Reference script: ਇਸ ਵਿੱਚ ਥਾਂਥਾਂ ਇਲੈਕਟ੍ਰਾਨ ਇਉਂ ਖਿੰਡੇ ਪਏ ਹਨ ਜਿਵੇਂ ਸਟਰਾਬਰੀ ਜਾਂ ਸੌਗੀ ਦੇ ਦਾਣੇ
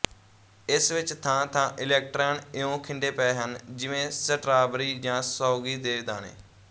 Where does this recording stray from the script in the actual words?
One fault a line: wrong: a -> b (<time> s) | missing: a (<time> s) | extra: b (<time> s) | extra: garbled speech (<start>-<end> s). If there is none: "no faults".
no faults